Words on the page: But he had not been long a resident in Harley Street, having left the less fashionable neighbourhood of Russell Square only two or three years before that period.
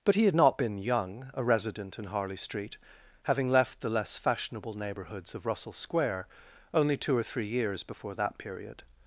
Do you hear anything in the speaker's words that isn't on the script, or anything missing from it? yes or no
yes